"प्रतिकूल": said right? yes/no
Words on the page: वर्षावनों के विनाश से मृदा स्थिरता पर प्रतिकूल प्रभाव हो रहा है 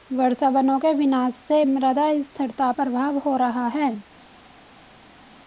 no